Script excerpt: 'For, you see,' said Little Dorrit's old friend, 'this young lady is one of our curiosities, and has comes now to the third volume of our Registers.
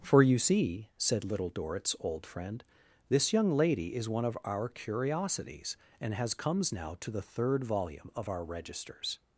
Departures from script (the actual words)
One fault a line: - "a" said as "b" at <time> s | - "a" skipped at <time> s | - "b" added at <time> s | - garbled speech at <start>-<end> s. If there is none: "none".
none